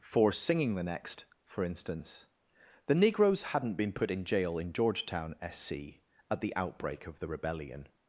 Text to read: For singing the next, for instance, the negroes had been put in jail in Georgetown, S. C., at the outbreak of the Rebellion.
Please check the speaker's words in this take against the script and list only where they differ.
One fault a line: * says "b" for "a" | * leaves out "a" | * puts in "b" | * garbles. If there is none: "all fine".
* says "hadn't" for "had"